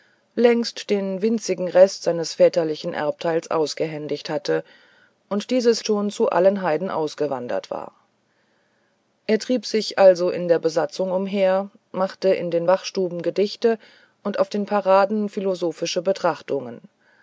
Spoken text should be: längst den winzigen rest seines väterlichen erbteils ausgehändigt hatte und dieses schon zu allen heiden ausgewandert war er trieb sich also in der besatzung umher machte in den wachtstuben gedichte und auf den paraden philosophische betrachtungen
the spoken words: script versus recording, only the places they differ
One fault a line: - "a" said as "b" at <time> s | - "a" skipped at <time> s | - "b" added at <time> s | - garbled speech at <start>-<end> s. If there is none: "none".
none